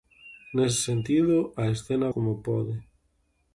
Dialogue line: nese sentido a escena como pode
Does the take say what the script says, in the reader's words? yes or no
yes